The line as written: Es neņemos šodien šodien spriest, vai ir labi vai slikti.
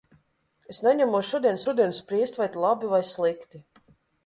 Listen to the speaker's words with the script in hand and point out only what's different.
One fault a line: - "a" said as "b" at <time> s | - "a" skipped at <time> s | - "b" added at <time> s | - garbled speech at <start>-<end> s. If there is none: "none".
none